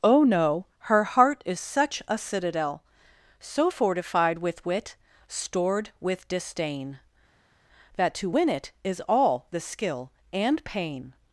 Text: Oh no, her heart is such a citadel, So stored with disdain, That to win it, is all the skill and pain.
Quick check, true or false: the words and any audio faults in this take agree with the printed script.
false